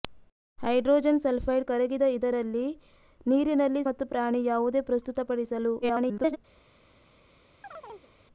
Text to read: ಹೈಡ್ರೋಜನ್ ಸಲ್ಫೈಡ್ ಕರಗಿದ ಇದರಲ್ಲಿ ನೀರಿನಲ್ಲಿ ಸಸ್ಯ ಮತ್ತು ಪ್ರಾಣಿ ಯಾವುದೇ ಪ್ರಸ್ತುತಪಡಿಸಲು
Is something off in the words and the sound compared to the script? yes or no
yes